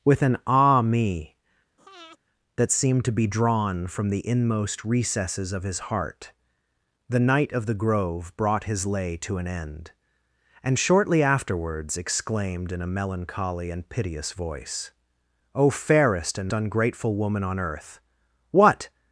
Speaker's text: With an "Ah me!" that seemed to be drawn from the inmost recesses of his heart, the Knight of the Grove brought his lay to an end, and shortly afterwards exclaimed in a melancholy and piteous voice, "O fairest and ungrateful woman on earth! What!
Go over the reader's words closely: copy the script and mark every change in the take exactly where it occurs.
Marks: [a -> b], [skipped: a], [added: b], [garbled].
With an "Ah me!" that seemed to be drawn from the inmost recesses of his heart, the Knight of the Grove brought his lay to an end, and shortly afterwards exclaimed in a melancholy and piteous voice, "O fairest and ungrateful woman on earth! What!